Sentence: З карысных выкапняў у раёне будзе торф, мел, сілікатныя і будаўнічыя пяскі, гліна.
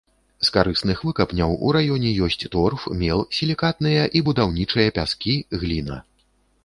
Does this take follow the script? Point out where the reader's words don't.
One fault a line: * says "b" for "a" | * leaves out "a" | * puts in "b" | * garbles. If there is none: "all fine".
* says "ёсць" for "будзе"